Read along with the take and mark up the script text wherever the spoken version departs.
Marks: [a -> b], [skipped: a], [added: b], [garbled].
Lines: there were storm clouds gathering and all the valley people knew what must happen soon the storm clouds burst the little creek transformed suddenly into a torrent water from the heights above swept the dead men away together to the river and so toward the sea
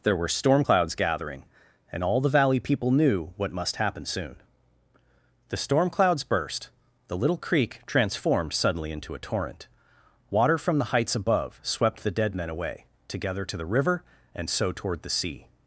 there were storm clouds gathering and all the valley people knew what must happen soon the storm clouds burst the little creek transformed suddenly into a torrent water from the heights above swept the dead men away together to the river and so toward the sea